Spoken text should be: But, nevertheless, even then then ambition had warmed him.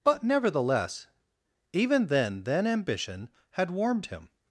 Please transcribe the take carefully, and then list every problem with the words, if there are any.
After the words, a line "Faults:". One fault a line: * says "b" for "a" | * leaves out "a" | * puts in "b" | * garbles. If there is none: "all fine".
But, nevertheless, even then then ambition had warmed him.
Faults:
all fine